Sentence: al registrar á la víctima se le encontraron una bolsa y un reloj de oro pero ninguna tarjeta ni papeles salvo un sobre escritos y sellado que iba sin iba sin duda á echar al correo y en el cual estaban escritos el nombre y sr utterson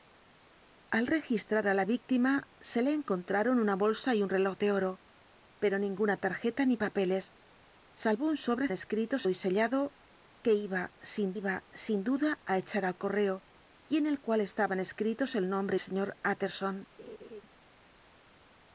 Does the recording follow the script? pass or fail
pass